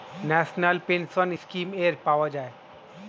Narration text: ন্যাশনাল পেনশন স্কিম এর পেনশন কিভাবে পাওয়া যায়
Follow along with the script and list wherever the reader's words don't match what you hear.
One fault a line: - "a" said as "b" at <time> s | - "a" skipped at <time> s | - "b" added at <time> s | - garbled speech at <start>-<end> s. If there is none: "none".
- "পেনশন কিভাবে" skipped at 1.9 s